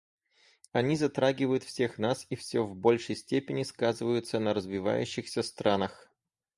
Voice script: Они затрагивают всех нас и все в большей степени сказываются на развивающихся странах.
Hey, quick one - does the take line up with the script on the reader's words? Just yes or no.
yes